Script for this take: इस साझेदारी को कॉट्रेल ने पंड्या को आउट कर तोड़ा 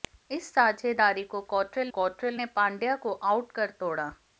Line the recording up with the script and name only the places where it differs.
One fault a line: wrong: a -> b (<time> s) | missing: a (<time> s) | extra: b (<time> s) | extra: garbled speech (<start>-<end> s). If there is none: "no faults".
extra: कॉट्रेल (1.9 s)